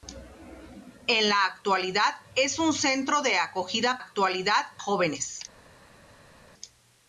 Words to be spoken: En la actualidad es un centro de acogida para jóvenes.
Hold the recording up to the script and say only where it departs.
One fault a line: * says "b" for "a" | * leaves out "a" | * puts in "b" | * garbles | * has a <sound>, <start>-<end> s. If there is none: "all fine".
* says "actualidad" for "para"